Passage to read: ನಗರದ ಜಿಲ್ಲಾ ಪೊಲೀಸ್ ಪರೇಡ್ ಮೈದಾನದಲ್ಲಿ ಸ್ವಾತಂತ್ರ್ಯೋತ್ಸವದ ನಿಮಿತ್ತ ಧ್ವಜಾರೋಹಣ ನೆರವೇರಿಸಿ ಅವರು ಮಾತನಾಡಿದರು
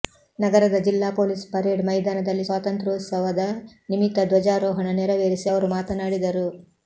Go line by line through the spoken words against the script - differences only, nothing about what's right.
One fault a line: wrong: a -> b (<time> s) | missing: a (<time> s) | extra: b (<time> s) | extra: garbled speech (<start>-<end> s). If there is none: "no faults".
no faults